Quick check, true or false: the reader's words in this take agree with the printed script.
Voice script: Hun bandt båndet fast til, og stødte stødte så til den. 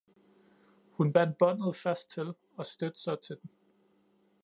false